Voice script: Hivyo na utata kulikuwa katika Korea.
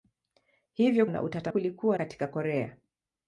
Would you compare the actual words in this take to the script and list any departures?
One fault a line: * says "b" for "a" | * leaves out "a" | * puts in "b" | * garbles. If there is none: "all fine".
all fine